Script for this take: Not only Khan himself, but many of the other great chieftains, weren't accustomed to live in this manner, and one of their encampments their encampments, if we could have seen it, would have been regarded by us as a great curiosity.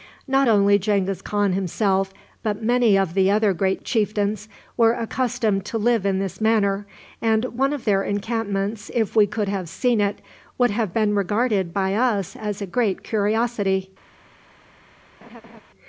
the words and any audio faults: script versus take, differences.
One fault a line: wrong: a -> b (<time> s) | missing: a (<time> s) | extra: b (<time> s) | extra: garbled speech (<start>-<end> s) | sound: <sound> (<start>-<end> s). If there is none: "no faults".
extra: Genghis (0.8 s)
wrong: weren't -> were (4.8 s)
missing: their encampments (8.9 s)
sound: laugh (15.2-15.6 s)